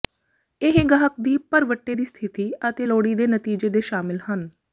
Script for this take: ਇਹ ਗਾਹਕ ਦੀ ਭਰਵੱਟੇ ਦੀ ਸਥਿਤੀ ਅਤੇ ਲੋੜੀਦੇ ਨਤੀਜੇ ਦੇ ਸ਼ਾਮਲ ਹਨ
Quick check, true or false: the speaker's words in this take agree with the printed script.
true